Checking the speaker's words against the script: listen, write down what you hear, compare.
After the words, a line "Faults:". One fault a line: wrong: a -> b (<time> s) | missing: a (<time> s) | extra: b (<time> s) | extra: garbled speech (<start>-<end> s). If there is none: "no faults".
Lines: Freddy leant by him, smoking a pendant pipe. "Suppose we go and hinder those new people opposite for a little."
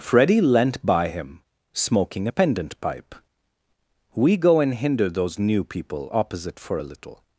Freddy leant by him, smoking a pendant pipe. "we go and hinder those new people opposite for a little."
Faults:
missing: Suppose (3.2 s)